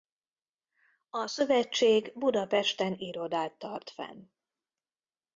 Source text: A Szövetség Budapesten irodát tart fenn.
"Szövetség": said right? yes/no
yes